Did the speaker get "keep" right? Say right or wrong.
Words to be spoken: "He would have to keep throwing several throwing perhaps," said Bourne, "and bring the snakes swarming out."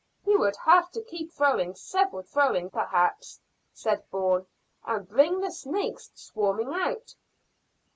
right